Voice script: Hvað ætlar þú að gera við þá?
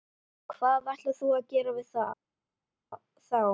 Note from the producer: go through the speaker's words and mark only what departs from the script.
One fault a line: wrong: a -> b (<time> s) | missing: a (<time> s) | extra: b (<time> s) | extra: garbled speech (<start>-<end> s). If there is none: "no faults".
no faults